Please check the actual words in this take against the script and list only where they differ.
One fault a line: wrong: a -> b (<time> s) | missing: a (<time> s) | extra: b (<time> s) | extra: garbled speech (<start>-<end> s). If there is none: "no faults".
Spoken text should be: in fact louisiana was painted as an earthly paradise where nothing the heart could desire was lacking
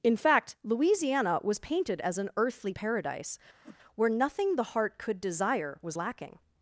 no faults